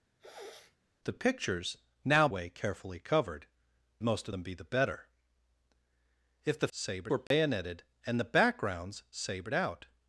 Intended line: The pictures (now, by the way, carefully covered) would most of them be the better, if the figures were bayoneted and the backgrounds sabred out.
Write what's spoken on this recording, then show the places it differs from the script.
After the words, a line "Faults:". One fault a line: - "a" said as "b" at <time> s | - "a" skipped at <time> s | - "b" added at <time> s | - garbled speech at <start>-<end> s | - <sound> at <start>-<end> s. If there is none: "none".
The pictures (now, way, carefully covered) most of them be the better, if the sabred were bayoneted and the backgrounds sabred out.
Faults:
- sniff at 0.2-0.8 s
- "by the" skipped at 2.3 s
- "would" skipped at 3.5 s
- "figures" said as "sabred" at 6.7 s
- dropout at 7.3-7.3 s